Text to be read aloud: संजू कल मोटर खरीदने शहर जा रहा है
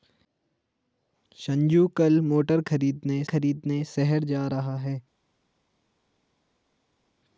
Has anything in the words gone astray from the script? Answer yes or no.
yes